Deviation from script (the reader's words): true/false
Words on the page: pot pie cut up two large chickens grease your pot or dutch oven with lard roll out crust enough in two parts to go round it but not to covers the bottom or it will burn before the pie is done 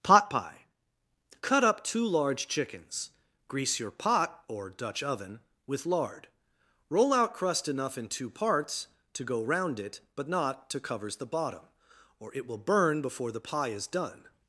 false